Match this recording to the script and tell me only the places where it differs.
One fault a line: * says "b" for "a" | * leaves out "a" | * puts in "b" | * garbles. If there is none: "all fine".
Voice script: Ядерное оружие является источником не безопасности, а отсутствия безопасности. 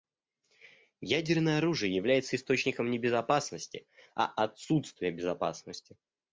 all fine